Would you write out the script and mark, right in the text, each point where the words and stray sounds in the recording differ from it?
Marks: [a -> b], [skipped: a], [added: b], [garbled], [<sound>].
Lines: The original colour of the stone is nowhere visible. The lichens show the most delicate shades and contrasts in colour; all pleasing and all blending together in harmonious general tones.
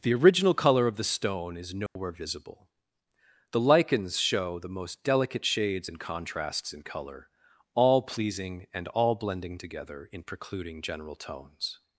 The original colour of the stone is nowhere [dropout] visible. The lichens show the most delicate shades and contrasts in colour; all pleasing and all blending together in [harmonious -> precluding] general tones.